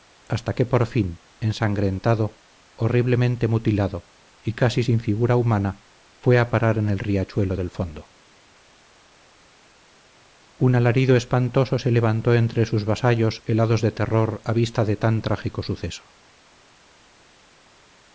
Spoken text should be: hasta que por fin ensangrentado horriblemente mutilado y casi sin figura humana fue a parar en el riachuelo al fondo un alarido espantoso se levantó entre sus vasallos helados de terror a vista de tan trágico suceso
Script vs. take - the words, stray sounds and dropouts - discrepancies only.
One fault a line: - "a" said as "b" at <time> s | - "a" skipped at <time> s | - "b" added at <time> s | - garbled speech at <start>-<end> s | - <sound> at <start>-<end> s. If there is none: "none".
- "al" said as "del" at 7.6 s